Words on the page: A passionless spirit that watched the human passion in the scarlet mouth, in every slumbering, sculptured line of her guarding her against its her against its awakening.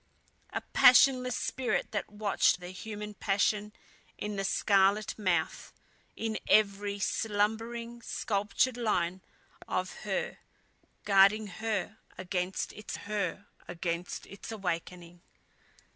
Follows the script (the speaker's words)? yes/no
yes